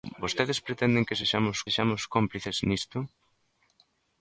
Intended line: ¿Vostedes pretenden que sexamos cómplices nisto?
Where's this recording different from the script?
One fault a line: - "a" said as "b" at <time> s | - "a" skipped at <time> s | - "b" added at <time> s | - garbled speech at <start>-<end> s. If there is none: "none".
- "sexamos" added at 1.6 s